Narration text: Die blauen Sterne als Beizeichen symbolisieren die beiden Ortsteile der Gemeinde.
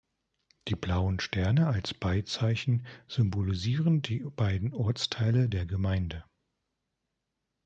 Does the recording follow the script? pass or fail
pass